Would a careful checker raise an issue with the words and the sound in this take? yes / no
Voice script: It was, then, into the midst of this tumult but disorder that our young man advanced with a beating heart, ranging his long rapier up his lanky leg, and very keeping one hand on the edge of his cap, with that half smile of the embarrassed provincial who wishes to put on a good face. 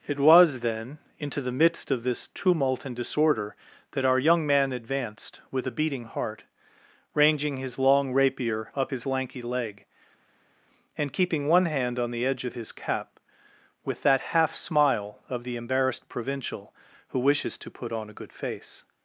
yes